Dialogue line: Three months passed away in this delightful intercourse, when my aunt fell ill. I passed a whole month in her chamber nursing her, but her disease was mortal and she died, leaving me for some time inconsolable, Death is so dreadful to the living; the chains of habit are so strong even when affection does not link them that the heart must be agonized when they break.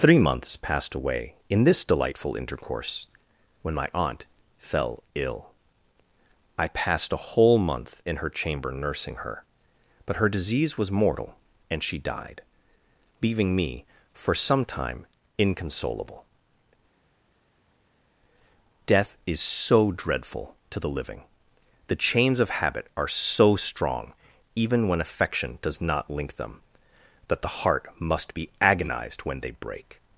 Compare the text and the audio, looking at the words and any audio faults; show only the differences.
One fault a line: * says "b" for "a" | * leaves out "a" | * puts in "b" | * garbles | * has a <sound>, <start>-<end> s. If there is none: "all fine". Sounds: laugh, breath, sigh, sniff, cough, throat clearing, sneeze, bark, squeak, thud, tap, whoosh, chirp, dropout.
all fine